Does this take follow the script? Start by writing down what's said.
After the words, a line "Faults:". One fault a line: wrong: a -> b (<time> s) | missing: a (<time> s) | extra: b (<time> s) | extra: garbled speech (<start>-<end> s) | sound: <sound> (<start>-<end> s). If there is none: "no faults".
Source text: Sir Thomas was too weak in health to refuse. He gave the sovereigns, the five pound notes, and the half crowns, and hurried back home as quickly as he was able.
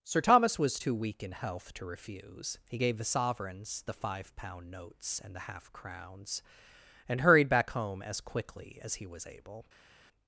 Sir Thomas was too weak in health to refuse. He gave the sovereigns, the five pound notes, and the half crowns, and hurried back home as quickly as he was able.
Faults:
no faults